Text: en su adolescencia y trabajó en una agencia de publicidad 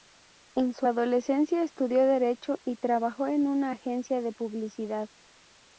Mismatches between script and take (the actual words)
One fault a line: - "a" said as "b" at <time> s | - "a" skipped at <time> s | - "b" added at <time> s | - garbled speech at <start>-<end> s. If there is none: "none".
- "estudió derecho" added at 1.6 s